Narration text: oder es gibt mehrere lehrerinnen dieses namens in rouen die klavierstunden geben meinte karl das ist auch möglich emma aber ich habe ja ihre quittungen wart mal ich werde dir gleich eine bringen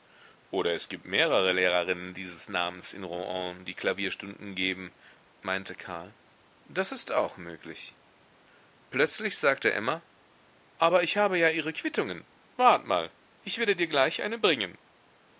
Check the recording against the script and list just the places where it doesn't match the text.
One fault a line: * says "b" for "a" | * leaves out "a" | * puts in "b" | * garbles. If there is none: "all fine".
* puts in "plötzlich sagte"